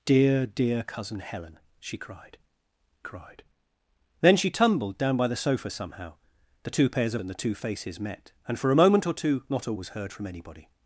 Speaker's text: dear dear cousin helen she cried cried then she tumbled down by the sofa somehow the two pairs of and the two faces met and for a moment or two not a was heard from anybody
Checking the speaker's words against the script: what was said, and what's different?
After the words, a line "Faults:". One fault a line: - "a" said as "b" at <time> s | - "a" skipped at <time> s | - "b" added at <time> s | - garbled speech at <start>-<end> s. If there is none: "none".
dear dear cousin helen she cried cried then she tumbled down by the sofa somehow the two pairs of and the two faces met and for a moment or two not a was heard from anybody
Faults:
none